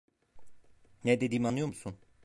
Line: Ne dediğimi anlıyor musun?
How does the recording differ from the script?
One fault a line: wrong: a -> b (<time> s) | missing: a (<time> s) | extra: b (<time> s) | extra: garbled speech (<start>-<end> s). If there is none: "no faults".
no faults